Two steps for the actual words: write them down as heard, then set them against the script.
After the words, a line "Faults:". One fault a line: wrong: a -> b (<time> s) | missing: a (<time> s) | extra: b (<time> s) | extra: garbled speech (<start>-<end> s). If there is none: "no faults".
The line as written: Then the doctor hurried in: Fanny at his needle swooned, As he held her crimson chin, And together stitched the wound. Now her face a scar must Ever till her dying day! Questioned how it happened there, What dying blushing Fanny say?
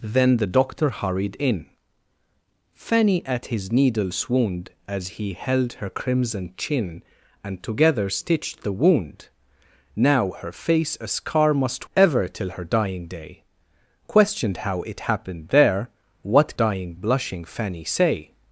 Then the doctor hurried in: Fanny at his needle swooned, As he held her crimson chin, And together stitched the wound. Now her face a scar must Ever till her dying day! Questioned how it happened there, What dying blushing Fanny say?
Faults:
no faults